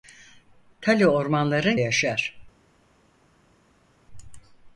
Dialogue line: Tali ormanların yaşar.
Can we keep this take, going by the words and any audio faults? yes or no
yes